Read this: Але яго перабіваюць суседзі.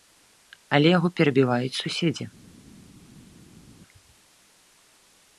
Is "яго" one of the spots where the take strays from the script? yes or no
no